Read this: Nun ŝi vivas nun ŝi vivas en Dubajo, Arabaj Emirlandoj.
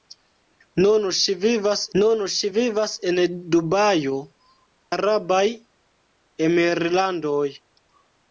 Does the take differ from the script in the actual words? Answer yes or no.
no